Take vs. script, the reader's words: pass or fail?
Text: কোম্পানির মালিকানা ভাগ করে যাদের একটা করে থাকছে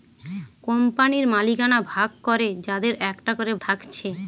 pass